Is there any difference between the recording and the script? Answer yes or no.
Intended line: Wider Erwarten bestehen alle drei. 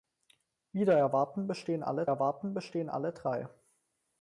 yes